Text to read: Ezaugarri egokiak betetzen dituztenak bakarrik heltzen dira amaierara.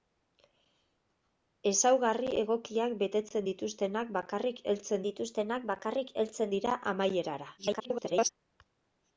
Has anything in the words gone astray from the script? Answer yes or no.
yes